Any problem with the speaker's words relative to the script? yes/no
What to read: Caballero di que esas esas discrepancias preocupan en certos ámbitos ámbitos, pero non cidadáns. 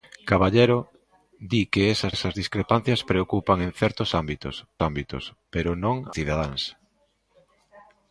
no